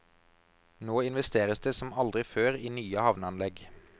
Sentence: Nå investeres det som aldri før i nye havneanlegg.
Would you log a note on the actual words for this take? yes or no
no